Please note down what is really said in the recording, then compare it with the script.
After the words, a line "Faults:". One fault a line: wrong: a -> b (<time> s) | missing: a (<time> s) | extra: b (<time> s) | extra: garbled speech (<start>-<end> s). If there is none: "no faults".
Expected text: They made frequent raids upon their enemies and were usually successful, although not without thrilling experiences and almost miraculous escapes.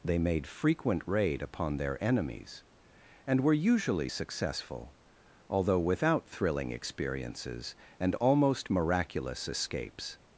They made frequent raid upon their enemies and were usually successful, although without thrilling experiences and almost miraculous escapes.
Faults:
wrong: raids -> raid (1.1 s)
missing: not (5.8 s)